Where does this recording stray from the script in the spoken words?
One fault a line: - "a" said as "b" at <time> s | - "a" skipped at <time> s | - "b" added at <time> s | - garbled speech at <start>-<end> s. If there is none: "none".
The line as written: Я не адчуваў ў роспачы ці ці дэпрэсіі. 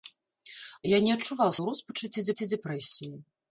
none